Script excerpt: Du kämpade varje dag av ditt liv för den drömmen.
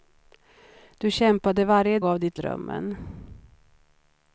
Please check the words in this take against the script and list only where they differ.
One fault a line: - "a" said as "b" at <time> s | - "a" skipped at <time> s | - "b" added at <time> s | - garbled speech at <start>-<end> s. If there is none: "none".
- "dag" skipped at 2.0 s
- "liv för den" skipped at 2.4 s